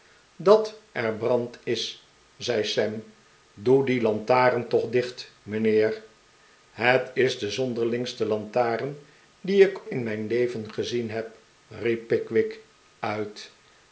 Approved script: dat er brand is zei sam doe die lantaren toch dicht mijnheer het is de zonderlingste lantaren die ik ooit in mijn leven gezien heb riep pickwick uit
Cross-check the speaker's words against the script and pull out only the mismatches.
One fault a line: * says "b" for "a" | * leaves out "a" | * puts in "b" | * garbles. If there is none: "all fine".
* leaves out "ooit"